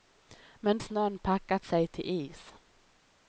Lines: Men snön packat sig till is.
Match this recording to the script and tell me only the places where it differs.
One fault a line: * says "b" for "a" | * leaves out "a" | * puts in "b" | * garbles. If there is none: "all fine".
all fine